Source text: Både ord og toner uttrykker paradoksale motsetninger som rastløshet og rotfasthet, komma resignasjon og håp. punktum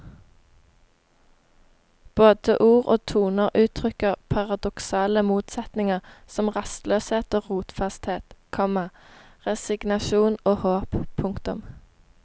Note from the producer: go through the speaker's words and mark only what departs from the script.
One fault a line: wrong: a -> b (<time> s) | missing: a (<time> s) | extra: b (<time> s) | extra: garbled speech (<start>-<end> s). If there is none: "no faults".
no faults